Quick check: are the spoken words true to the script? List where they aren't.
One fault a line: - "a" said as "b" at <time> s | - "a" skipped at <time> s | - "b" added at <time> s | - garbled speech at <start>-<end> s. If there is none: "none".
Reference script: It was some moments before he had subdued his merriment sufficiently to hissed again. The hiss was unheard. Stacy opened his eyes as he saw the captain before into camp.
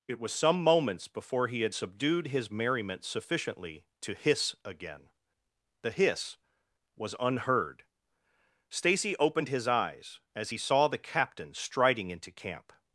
- "hissed" said as "hiss" at 4.1 s
- "before" said as "striding" at 11.5 s